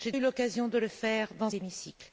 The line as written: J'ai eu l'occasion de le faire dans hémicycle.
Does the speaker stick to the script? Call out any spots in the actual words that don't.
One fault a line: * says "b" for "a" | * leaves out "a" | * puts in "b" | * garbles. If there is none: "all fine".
all fine